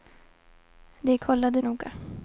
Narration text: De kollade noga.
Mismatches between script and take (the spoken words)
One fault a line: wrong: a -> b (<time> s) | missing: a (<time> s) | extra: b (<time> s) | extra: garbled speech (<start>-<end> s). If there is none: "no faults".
no faults